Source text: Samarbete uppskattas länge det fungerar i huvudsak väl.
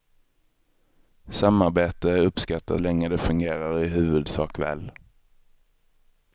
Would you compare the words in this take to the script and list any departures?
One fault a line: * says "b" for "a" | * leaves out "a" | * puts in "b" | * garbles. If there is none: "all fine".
all fine